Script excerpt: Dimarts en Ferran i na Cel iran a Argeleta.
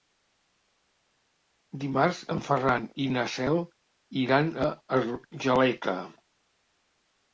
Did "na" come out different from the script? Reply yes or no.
no